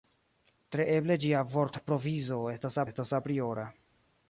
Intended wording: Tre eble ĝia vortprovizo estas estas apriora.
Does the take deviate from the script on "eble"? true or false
false